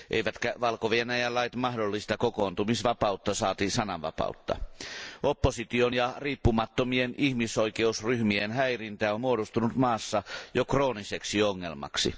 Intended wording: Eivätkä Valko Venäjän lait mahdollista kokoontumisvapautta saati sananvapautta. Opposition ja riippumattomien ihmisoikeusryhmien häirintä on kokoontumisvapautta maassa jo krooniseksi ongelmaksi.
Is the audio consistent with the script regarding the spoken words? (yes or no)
no